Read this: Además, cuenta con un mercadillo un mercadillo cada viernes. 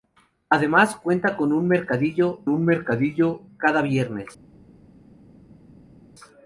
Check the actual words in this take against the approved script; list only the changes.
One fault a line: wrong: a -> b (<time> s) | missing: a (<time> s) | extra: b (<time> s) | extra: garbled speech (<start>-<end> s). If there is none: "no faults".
no faults